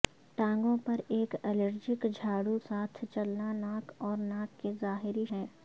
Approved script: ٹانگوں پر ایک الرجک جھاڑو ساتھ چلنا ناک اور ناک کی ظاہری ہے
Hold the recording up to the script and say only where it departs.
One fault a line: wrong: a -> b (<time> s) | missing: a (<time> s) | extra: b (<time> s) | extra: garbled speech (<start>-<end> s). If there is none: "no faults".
no faults